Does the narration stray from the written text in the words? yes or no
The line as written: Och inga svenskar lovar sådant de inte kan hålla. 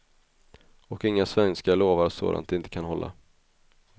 no